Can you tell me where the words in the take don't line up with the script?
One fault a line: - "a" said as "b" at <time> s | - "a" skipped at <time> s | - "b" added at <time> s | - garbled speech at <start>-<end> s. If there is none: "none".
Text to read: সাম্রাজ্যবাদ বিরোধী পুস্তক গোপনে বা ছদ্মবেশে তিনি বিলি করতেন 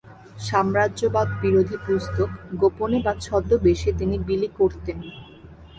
none